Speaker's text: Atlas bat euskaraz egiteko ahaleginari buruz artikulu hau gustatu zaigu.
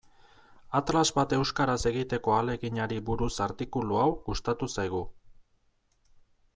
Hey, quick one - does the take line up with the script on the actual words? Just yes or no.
yes